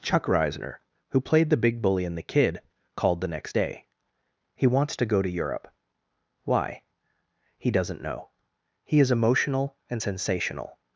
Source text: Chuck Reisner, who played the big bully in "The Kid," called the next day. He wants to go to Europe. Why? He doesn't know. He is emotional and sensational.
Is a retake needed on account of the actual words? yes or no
no